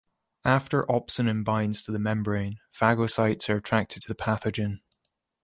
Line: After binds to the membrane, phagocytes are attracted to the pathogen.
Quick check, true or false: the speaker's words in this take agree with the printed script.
false